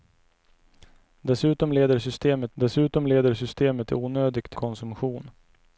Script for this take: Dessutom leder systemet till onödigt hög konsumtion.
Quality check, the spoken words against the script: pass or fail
fail